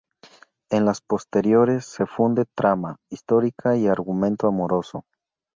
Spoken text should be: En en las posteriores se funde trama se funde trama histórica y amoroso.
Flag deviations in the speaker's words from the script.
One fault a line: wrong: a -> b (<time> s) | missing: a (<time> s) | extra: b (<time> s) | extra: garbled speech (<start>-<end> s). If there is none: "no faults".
missing: en (0.8 s)
missing: se funde trama (3.0 s)
extra: argumento (3.9 s)